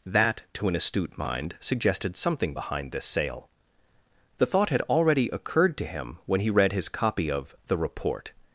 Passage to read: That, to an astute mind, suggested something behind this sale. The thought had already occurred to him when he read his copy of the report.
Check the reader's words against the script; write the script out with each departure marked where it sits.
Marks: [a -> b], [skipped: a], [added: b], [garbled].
That, to an astute mind, suggested something behind this sale. The thought had already occurred to him when he read his copy of the report.